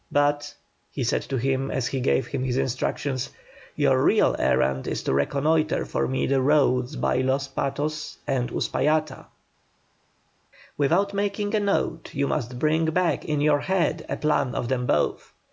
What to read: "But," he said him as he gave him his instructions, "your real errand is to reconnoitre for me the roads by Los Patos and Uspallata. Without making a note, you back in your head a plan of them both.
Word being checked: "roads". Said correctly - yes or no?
yes